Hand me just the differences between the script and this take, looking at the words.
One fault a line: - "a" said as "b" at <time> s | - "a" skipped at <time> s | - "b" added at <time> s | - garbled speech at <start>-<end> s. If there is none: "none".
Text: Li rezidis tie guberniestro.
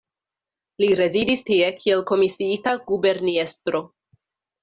- "kiel komisiita" added at 1.8 s